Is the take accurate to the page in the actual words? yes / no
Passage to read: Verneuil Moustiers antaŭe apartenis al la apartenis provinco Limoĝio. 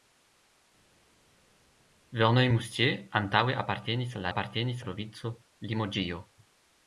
yes